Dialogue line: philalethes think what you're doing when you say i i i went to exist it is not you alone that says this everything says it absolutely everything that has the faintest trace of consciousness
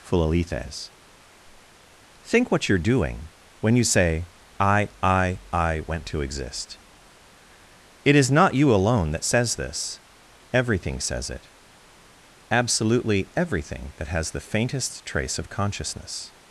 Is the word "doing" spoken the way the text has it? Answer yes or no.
yes